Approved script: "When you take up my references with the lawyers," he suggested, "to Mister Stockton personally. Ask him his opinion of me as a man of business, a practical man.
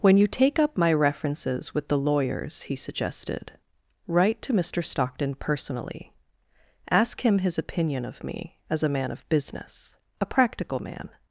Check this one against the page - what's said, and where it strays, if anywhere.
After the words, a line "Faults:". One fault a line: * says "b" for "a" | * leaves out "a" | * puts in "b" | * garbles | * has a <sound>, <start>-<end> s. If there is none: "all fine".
"When you take up my references with the lawyers," he suggested, "write to Mister Stockton personally. Ask him his opinion of me as a man of business, a practical man.
Faults:
* puts in "write"